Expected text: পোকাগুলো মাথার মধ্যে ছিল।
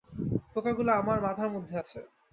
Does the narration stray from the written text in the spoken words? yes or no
yes